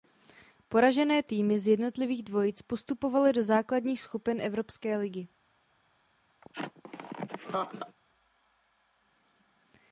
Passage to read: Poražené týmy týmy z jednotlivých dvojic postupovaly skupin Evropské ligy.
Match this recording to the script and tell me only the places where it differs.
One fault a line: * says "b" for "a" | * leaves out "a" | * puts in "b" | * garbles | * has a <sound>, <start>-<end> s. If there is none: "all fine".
* leaves out "týmy"
* puts in "do základních"
* has a laugh, 6.4-8.0 s